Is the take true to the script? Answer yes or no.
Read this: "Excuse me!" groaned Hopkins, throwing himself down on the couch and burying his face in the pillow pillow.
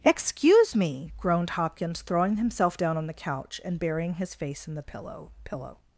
yes